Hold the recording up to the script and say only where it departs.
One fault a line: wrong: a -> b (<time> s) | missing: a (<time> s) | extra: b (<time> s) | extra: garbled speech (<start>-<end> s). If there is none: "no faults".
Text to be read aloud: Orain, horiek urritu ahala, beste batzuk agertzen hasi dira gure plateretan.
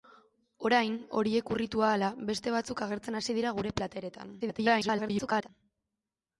extra: garbled speech (4.4-5.5 s)